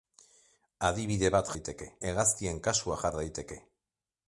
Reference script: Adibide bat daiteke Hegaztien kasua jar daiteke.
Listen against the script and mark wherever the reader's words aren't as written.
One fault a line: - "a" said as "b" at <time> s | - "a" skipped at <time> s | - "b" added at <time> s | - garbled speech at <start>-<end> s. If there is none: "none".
none